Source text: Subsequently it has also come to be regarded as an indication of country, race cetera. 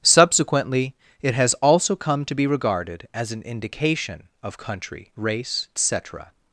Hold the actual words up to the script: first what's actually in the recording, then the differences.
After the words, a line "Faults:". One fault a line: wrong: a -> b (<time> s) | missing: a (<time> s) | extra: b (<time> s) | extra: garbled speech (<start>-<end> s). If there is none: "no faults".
Subsequently it has also come to be regarded as an indication of country, race cetera.
Faults:
no faults